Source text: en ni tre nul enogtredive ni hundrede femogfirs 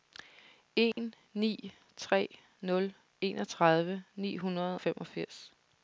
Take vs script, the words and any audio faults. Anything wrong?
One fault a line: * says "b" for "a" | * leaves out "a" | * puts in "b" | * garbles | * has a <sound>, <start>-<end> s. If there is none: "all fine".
* has a dropout, 0.9-1.0 s